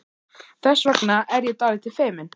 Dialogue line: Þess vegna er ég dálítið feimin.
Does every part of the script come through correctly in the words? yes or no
yes